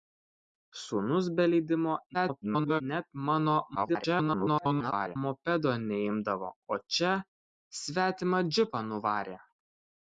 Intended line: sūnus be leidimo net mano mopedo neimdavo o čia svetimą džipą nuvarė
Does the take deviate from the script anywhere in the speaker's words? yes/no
yes